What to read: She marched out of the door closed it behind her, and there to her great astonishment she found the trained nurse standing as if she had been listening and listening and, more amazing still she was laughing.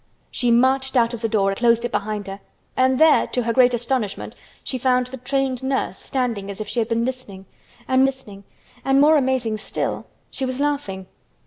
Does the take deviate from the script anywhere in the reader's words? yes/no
no